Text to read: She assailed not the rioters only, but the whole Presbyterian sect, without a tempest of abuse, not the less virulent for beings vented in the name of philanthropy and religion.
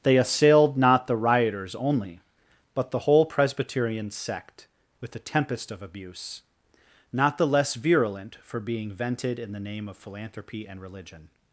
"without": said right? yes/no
no